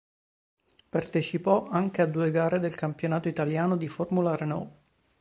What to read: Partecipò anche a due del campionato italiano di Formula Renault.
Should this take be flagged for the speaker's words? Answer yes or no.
yes